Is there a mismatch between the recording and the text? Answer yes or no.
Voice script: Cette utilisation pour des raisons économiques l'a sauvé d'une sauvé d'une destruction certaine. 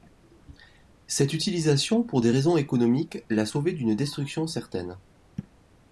yes